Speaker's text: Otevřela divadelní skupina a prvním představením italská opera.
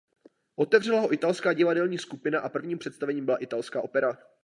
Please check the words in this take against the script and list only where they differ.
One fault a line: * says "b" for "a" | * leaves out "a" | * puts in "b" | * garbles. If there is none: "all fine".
* puts in "ho italská"
* puts in "byla"